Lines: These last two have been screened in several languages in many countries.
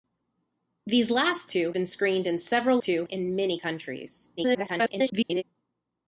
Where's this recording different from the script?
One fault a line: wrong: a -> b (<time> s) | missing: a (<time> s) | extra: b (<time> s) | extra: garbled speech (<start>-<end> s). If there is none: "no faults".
missing: have (1.7 s)
wrong: languages -> two (2.8 s)
extra: garbled speech (4.4-5.4 s)